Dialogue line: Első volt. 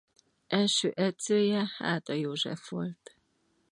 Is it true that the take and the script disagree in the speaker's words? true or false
true